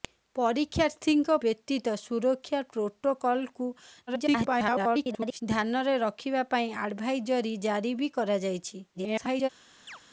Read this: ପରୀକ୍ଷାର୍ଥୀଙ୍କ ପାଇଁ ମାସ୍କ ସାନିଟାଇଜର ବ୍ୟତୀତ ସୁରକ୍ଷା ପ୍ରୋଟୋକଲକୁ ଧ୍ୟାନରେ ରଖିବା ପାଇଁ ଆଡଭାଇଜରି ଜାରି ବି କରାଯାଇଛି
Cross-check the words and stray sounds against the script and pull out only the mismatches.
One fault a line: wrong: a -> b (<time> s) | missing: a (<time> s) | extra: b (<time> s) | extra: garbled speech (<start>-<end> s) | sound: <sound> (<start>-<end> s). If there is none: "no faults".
missing: ପାଇଁ ମାସ୍କ ସାନିଟାଇଜର (1.4 s)
extra: garbled speech (4.1-5.4 s)
extra: garbled speech (8.9-9.5 s)
sound: chirp (9.9-10.0 s)